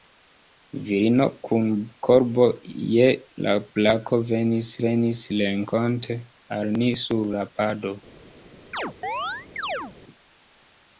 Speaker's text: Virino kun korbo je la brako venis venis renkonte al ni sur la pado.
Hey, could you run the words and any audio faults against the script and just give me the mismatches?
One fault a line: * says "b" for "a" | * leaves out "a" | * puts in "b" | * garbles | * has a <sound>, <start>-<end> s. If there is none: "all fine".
* has a chirp, 8.7-9.9 s